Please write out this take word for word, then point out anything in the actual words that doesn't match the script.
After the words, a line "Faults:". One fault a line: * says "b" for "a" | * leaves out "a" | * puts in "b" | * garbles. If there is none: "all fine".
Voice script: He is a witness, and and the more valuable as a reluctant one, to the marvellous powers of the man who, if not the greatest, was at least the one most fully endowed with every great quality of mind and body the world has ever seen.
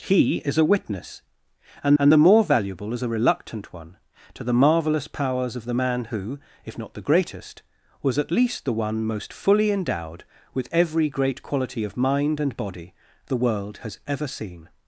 He is a witness, and and the more valuable as a reluctant one, to the marvellous powers of the man who, if not the greatest, was at least the one most fully endowed with every great quality of mind and body the world has ever seen.
Faults:
all fine